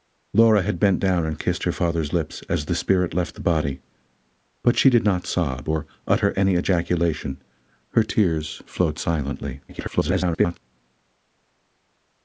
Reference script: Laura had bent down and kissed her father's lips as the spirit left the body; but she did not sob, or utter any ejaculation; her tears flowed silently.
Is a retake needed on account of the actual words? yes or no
yes